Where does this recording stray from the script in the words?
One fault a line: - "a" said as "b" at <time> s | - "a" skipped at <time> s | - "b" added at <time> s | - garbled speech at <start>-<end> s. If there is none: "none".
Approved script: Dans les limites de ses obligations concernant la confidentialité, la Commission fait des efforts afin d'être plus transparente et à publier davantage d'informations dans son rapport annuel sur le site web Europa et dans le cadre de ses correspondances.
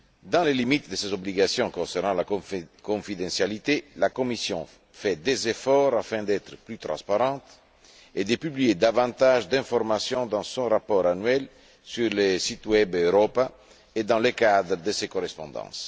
- "à" said as "de" at 8.2 s